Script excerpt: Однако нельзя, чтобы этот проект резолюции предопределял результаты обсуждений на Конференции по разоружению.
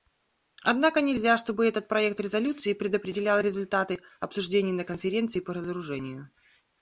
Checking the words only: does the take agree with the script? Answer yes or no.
yes